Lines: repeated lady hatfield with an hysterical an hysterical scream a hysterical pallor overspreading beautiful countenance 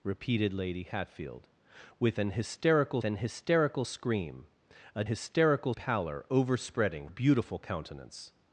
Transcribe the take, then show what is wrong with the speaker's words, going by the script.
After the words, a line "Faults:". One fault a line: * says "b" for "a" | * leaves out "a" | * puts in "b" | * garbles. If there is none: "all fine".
repeated lady hatfield with an hysterical an hysterical scream a hysterical pallor overspreading beautiful countenance
Faults:
all fine